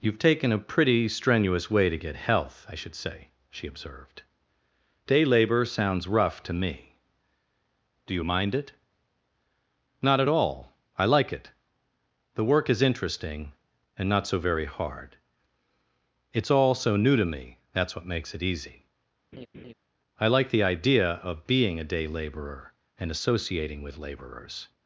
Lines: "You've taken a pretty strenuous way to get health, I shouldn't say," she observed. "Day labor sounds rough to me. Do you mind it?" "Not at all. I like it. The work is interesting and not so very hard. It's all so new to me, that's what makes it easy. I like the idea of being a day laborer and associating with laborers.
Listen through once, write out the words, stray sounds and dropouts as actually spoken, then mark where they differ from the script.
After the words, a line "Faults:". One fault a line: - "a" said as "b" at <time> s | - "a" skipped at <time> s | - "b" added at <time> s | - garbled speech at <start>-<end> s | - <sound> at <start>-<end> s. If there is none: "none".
"You've taken a pretty strenuous way to get health, I should say," she observed. "Day labor sounds rough to me. Do you mind it?" "Not at all. I like it. The work is interesting and not so very hard. It's all so new to me, that's what makes it easy. I like the idea of being a day laborer and associating with laborers.
Faults:
- "shouldn't" said as "should" at 2.7 s
- laugh at 19.3-19.7 s